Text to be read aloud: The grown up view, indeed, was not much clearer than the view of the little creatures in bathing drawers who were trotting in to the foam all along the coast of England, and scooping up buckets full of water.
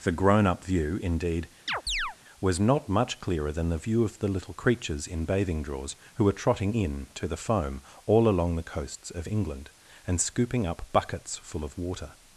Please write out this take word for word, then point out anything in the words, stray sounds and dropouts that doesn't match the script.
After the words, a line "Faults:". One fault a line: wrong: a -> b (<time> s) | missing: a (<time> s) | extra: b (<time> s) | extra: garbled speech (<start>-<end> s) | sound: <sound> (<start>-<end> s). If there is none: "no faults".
The grown up view, indeed, was not much clearer than the view of the little creatures in bathing drawers who were trotting in to the foam all along the coasts of England, and scooping up buckets full of water.
Faults:
sound: chirp (1.7-2.2 s)
wrong: coast -> coasts (8.7 s)